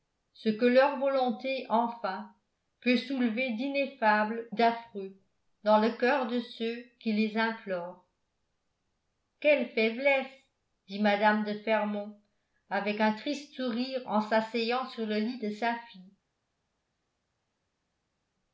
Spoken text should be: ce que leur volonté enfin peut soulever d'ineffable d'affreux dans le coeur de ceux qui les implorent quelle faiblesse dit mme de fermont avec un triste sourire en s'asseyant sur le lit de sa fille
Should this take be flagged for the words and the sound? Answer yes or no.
no